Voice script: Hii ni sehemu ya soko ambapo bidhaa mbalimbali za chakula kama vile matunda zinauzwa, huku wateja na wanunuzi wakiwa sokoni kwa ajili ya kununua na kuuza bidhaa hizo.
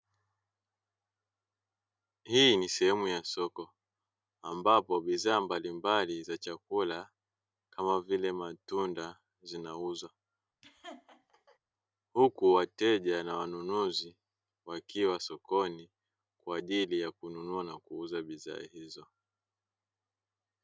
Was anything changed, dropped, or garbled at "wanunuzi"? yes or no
no